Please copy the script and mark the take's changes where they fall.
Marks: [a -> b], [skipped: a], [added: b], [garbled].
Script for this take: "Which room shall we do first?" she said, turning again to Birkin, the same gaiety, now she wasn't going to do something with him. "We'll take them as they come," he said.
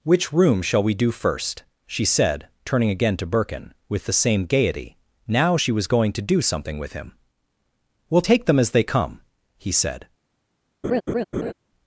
"Which room shall we do first?" she said, turning again to Birkin, [added: with] the same gaiety, now she [wasn't -> was] going to do something with him. "We'll take them as they come," he said.